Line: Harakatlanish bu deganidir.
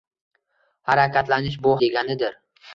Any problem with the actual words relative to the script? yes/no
no